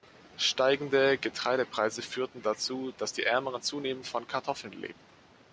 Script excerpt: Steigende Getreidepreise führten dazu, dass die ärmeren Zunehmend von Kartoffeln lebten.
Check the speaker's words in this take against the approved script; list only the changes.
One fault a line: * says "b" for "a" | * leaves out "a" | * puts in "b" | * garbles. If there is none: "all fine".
all fine